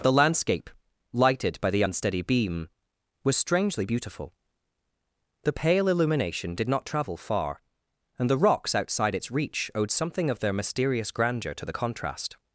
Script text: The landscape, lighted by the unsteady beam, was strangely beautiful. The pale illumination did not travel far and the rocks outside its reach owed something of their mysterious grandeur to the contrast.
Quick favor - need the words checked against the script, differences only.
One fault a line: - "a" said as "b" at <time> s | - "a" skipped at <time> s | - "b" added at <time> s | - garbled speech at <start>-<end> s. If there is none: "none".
none